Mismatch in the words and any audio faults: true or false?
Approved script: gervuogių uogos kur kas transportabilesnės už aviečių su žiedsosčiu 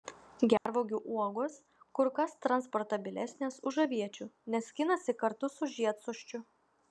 true